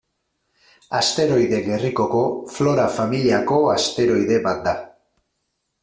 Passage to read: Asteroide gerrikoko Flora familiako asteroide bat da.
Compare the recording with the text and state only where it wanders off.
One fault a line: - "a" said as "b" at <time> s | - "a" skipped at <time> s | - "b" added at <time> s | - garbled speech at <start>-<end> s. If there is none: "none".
none